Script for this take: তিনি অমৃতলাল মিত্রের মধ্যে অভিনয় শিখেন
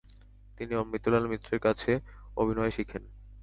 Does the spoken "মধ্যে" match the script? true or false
false